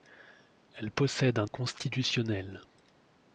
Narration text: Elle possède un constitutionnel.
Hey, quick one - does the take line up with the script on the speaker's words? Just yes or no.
yes